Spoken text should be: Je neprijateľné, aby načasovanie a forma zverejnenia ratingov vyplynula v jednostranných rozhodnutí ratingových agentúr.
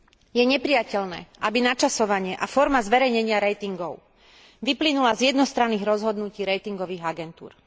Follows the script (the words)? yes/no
no